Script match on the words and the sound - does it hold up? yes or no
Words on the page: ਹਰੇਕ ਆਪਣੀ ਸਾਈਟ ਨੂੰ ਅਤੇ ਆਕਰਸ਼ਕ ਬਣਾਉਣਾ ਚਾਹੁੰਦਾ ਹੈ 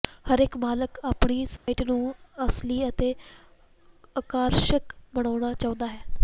no